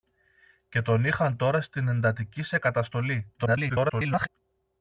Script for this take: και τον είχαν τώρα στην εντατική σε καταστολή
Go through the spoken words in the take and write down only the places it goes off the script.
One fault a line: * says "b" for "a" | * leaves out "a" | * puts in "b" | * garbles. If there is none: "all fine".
* garbles